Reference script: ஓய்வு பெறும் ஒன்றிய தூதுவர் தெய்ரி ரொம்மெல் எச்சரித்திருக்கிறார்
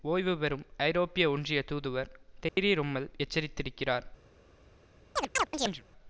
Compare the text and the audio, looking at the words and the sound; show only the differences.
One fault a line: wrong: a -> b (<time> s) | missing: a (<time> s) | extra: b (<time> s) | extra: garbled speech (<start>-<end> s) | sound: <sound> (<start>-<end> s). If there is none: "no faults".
extra: ஐரோப்பிய (0.8 s)
sound: dropout (2.5-2.6 s)
sound: chirp (5.2-5.8 s)